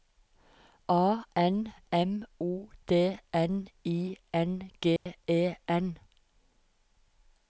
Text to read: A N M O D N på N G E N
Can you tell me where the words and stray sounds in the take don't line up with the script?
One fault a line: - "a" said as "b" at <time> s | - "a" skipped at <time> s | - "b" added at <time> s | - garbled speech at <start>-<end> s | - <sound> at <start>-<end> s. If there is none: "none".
- "på" said as "I" at 3.9 s
- dropout at 5.0-5.1 s